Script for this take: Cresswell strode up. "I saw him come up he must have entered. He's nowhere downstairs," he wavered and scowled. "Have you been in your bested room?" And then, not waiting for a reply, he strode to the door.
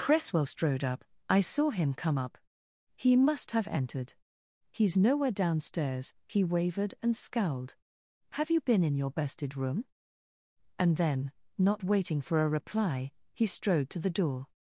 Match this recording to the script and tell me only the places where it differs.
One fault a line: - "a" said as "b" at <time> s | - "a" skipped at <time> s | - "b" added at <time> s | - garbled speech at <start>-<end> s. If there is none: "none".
none